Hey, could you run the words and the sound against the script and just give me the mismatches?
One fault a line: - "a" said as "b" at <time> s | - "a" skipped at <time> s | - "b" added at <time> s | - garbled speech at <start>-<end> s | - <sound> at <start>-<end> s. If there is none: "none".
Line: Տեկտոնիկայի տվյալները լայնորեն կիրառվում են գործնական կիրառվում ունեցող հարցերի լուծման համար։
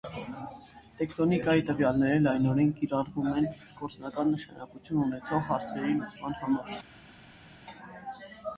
- "կիրառվում" said as "նշանակություն" at 4.4 s